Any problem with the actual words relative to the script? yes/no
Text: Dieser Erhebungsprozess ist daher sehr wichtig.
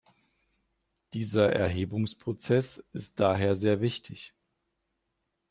no